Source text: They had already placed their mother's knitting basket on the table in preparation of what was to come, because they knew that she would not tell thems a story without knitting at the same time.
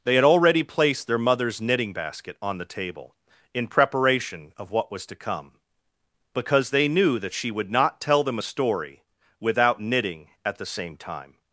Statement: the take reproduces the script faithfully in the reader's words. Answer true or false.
false